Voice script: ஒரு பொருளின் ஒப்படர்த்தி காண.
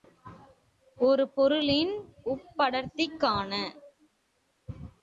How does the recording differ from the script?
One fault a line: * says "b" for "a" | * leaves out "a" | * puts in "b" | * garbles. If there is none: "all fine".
all fine